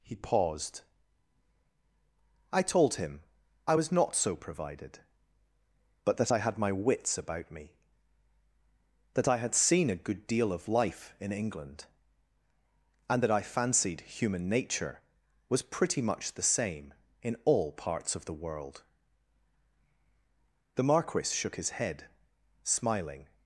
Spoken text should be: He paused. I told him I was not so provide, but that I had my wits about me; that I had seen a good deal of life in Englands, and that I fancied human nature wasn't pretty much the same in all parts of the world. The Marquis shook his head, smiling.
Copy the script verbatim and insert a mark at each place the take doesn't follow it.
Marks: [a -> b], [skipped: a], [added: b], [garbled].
He paused. I told him I was not so [provide, -> provided] but that I had my wits about me; that I had seen a good deal of life in [Englands, -> England] and that I fancied human nature [wasn't -> was] pretty much the same in all parts of the world. The Marquis shook his head, smiling.